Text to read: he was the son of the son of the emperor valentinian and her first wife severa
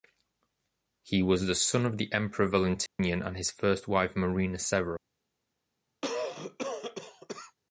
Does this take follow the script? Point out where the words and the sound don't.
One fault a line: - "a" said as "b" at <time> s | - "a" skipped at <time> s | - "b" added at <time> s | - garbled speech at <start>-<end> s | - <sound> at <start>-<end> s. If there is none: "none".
- "son of the" skipped at 2.1 s
- dropout at 2.9-3.0 s
- "her" said as "his" at 3.4 s
- "marina" added at 4.2 s
- cough at 6.0-7.6 s